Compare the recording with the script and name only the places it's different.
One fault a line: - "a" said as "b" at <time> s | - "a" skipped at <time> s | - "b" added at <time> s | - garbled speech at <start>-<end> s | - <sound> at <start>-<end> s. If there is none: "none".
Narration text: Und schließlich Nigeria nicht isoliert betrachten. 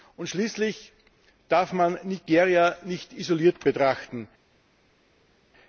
- "darf man" added at 1.5 s